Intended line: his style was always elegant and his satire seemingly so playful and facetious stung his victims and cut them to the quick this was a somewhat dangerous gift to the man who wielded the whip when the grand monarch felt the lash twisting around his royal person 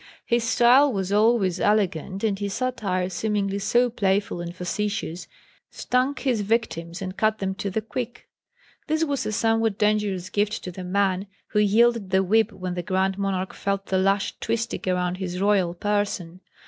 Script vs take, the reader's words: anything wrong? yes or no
no